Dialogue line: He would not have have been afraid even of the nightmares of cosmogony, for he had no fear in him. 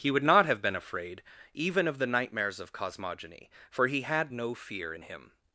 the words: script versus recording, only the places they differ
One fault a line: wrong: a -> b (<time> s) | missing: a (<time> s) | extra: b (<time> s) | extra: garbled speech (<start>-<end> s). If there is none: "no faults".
missing: have (0.6 s)